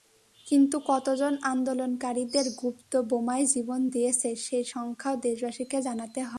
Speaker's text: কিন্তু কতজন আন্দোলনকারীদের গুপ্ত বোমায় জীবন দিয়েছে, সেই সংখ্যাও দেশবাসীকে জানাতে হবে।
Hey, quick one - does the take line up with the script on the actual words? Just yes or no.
yes